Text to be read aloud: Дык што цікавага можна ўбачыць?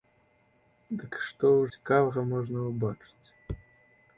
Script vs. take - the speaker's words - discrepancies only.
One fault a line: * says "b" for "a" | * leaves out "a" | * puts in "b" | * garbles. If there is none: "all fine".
all fine